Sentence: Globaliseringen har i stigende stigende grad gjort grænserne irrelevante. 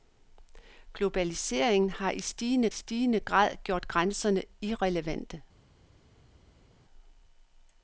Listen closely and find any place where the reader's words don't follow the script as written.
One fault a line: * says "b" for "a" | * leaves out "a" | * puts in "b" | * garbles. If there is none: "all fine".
all fine